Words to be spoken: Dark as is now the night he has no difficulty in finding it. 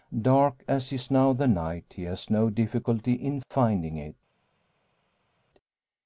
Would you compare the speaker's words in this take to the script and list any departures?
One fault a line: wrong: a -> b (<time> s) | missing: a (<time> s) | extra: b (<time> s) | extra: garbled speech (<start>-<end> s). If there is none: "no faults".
no faults